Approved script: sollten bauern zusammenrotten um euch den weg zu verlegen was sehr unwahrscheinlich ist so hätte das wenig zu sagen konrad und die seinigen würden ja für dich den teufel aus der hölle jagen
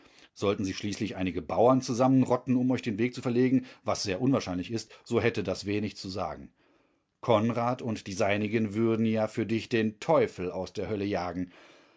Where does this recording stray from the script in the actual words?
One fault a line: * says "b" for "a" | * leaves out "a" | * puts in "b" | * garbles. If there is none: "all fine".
* puts in "sich schließlich einige"